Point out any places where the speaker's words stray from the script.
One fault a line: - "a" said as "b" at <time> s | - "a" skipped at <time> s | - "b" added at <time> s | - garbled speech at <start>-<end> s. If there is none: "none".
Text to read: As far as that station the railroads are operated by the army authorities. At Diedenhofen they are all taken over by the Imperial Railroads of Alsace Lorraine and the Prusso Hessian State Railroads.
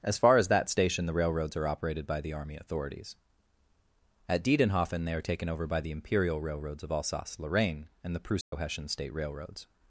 - "all" skipped at 5.2 s